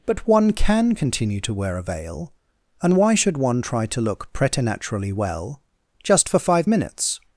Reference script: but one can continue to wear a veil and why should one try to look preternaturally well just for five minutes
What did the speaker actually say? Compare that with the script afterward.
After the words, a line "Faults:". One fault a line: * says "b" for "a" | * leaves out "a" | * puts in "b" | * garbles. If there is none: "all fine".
but one can continue to wear a veil and why should one try to look preternaturally well just for five minutes
Faults:
all fine